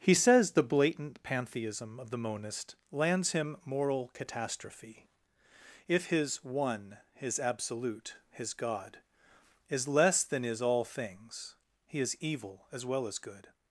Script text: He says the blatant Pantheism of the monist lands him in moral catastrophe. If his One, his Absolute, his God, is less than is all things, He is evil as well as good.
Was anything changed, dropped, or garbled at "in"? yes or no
yes